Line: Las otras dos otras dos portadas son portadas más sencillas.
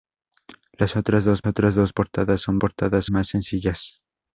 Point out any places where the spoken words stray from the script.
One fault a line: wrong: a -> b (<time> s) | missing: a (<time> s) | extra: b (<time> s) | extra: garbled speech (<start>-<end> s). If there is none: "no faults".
no faults